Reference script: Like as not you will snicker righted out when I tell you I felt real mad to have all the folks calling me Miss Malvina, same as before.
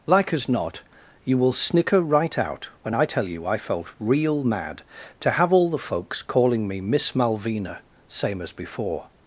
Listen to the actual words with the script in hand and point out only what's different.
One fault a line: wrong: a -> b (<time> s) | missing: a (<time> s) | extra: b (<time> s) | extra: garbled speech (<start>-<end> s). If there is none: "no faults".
wrong: righted -> right (2.0 s)